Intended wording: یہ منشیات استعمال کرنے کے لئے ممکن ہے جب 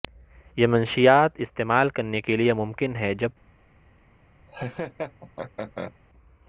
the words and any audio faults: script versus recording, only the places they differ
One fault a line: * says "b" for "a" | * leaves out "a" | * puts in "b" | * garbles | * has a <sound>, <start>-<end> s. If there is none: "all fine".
* has a laugh, 4.5-5.9 s